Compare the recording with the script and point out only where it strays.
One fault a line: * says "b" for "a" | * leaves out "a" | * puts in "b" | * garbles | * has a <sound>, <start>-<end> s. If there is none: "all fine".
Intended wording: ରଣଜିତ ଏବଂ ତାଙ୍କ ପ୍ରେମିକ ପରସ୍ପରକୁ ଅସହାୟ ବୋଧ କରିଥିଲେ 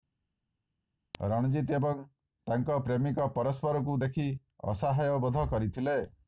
* puts in "ଦେଖି"